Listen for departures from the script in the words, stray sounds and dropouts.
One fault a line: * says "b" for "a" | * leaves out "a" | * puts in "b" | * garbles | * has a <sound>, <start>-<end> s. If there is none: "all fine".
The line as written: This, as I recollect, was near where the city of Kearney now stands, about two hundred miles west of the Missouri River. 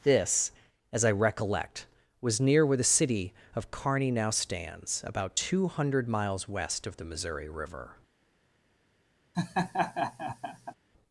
* has a laugh, 9.3-10.7 s